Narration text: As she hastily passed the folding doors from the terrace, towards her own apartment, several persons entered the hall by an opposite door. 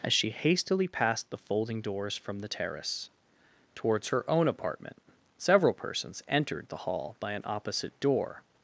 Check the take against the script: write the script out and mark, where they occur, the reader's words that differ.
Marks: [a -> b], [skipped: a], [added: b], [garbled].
As she hastily passed the folding doors from the terrace, towards her own apartment, several persons entered the hall by an opposite door.